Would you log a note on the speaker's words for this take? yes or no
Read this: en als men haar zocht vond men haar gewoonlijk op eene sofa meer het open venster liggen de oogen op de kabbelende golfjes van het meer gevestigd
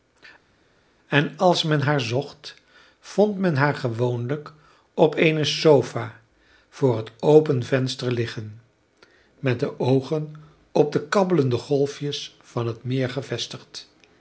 yes